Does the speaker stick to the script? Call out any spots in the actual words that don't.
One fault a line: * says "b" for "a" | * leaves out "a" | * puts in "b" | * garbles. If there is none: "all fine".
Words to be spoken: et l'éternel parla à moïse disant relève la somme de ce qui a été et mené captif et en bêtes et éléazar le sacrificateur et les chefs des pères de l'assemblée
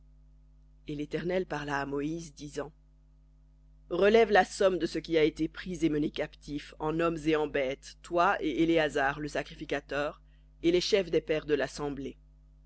* puts in "pris"
* puts in "en hommes"
* puts in "toi"